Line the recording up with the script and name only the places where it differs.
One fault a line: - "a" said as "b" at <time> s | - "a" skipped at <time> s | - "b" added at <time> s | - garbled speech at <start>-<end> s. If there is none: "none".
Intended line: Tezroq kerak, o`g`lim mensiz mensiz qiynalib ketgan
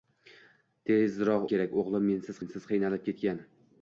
none